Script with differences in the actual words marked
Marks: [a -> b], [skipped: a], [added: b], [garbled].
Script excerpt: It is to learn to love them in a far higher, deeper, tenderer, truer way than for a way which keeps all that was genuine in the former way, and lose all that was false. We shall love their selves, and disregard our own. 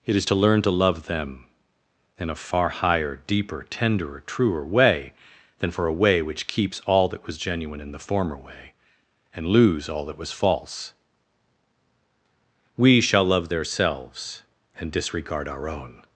It is to learn to love them in a far higher, deeper, tenderer, truer way than for a way which keeps all that was genuine in the former way, and lose all that was false. We shall love their selves, and disregard our own.